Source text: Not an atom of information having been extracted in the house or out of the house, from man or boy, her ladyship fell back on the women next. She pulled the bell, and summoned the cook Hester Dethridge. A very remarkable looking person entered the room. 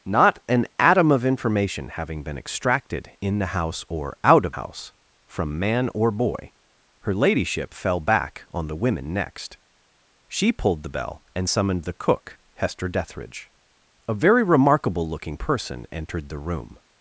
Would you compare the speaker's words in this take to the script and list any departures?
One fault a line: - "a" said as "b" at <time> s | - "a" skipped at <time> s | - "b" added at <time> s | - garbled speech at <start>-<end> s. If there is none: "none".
- "the" skipped at 4.5 s